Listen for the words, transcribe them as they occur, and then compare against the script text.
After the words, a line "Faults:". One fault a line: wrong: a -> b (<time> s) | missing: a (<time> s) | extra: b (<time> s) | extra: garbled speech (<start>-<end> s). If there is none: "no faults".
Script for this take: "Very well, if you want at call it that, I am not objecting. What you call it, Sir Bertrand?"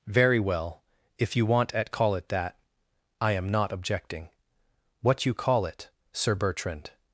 "Very well, if you want at call it that, I am not objecting. What you call it, Sir Bertrand?"
Faults:
no faults